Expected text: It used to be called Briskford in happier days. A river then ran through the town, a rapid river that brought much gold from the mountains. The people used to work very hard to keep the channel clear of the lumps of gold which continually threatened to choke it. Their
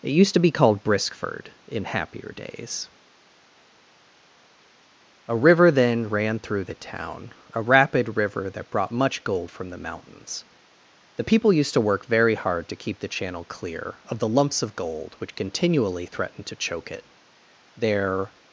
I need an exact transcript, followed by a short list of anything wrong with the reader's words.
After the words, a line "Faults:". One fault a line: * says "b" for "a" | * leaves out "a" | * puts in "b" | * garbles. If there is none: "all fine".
It used to be called Briskford in happier days. A river then ran through the town, a rapid river that brought much gold from the mountains. The people used to work very hard to keep the channel clear of the lumps of gold which continually threatened to choke it. Their
Faults:
all fine